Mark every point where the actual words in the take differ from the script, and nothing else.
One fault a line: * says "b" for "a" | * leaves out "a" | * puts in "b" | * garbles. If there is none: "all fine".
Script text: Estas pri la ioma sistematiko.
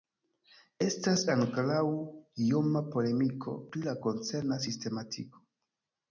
* puts in "ankoraŭ ioma polemiko"
* says "koncerna" for "ioma"